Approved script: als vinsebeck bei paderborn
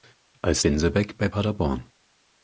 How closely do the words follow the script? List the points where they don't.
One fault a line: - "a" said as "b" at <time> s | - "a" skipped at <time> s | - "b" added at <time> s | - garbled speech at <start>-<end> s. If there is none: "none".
none